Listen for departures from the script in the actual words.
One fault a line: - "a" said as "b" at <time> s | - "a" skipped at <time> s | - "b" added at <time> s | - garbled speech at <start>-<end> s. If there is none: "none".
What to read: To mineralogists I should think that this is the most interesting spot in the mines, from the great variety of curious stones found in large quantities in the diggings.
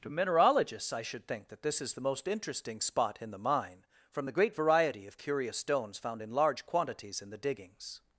- "mines" said as "mine" at 3.4 s